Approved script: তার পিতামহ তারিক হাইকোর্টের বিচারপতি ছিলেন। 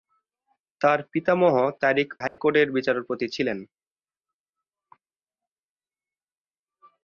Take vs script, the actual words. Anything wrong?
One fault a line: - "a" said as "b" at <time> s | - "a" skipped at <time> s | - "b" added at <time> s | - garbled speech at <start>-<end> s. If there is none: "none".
none